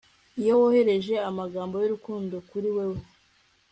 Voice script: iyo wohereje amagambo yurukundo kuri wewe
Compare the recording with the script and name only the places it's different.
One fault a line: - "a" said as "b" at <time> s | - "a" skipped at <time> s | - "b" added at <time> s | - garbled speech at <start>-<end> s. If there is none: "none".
none